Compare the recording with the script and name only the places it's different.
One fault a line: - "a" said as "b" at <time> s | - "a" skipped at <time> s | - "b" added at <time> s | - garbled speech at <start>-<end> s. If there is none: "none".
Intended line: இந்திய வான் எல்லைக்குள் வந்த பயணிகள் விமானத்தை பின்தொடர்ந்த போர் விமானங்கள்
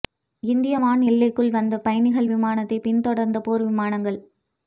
none